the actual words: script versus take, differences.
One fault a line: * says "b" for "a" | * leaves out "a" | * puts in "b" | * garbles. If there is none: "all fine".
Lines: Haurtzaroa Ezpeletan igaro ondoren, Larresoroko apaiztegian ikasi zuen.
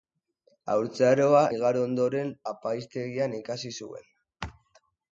* leaves out "Ezpeletan"
* leaves out "Larresoroko"